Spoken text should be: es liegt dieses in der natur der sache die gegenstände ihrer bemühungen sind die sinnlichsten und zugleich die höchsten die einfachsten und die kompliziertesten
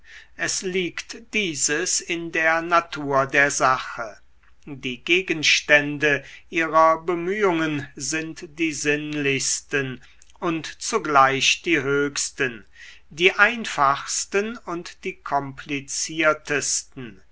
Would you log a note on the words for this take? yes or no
no